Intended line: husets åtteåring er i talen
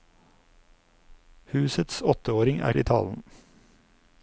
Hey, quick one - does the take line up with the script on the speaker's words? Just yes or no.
yes